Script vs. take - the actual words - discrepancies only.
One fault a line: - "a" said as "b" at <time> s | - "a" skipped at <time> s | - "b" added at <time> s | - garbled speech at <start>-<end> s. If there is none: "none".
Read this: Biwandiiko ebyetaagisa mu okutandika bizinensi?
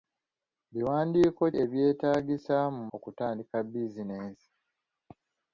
none